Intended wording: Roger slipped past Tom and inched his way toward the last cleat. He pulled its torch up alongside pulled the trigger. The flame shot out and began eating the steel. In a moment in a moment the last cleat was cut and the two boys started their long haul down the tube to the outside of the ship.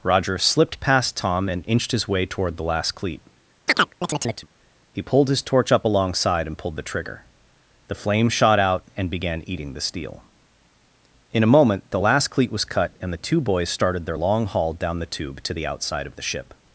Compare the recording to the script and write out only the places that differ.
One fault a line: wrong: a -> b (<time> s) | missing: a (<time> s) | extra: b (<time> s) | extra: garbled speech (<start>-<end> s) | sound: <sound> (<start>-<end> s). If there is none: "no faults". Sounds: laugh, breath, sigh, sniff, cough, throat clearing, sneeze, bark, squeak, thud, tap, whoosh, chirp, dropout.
sound: chirp (3.7-4.5 s)
wrong: its -> his (5.3 s)
extra: and (6.5 s)
missing: in a moment (11.9 s)